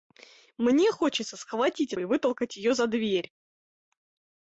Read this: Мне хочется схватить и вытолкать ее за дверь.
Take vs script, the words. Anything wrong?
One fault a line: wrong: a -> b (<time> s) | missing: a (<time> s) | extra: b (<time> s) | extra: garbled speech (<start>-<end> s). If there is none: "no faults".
no faults